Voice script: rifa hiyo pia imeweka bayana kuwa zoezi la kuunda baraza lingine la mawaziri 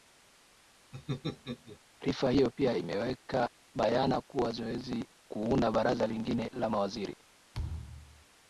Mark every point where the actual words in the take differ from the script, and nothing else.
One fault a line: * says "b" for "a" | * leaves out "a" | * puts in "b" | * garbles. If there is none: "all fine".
* leaves out "la"